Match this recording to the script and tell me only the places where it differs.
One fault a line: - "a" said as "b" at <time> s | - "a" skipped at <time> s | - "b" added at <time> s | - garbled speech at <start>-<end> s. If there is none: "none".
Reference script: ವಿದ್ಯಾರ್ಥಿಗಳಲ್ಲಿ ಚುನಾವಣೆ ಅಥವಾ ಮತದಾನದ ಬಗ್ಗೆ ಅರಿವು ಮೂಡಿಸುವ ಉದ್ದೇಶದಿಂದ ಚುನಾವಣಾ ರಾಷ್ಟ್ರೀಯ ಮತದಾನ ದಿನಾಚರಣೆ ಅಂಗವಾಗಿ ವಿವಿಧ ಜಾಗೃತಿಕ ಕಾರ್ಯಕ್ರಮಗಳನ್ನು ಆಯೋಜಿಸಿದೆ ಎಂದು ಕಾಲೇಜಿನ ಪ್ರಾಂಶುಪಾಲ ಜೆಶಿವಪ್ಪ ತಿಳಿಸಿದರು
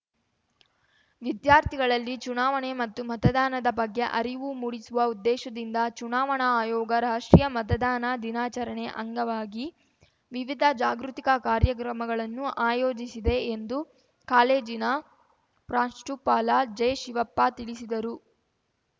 - "ಅಥವಾ" said as "ಮತ್ತು" at 2.7 s
- "ಆಯೋಗ" added at 6.5 s